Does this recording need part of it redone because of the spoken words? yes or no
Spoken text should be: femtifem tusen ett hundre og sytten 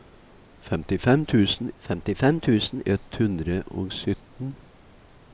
yes